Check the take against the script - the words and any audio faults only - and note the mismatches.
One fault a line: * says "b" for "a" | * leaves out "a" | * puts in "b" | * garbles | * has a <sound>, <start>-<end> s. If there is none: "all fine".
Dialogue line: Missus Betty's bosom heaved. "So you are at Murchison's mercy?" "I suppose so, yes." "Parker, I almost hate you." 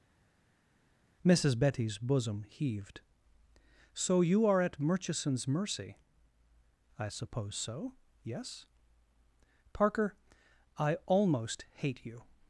all fine